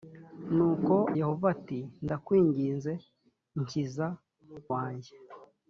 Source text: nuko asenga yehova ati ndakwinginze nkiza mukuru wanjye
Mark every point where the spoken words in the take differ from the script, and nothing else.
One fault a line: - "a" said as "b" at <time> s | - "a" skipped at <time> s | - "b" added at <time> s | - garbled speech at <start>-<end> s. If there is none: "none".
- "asenga" skipped at 0.9 s
- "mukuru" skipped at 4.1 s